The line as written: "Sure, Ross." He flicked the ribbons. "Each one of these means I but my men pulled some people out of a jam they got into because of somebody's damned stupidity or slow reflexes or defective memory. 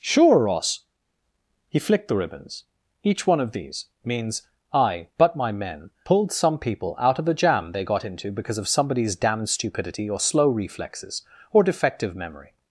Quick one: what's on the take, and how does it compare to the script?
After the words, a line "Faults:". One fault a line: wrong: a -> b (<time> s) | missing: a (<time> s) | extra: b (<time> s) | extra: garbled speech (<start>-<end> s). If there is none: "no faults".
"Sure, Ross." He flicked the ribbons. "Each one of these means I but my men pulled some people out of a jam they got into because of somebody's damned stupidity or slow reflexes or defective memory.
Faults:
no faults